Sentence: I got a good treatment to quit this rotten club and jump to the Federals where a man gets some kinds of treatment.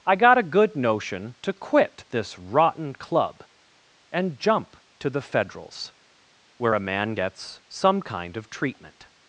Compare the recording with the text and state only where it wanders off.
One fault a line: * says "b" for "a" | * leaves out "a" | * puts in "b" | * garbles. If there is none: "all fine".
* says "notion" for "treatment"
* says "kind" for "kinds"